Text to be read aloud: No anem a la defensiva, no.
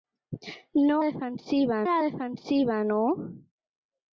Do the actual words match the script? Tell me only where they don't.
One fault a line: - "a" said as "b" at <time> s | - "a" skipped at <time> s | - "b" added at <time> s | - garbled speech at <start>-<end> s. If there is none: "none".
- "anem" said as "defensiva" at 1.1 s